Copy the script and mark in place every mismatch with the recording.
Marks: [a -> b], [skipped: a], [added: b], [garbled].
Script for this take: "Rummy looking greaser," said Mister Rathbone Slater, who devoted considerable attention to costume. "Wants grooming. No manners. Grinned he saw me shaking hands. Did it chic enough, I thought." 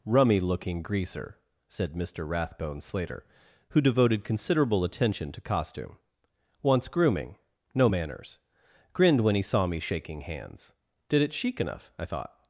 "Rummy looking greaser," said Mister Rathbone Slater, who devoted considerable attention to costume. "Wants grooming. No manners. Grinned [added: when] he saw me shaking hands. Did it chic enough, I thought."